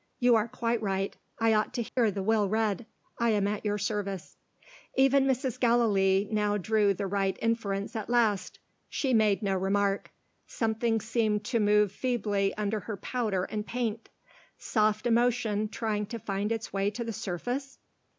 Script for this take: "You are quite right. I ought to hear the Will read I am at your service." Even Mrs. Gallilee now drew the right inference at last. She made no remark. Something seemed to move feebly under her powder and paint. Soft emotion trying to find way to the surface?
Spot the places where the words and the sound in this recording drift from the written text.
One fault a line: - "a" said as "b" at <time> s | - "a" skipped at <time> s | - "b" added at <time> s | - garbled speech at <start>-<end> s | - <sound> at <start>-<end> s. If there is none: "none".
- dropout at 1.9-2.0 s
- "its" added at 16.5 s